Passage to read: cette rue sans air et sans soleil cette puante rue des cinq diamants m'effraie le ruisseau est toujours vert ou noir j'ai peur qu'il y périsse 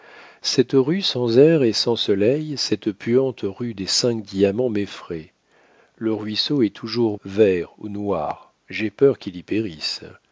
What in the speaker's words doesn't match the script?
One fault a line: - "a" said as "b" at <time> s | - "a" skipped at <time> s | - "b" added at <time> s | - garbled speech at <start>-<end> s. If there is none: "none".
none